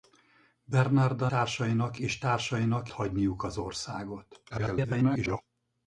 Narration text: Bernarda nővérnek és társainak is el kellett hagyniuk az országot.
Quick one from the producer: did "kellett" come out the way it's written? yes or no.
no